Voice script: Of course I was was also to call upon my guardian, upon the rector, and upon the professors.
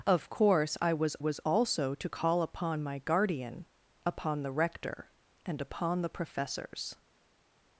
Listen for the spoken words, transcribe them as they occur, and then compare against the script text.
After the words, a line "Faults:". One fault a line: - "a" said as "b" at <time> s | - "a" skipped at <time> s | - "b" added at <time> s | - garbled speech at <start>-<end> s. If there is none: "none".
Of course I was was also to call upon my guardian, upon the rector, and upon the professors.
Faults:
none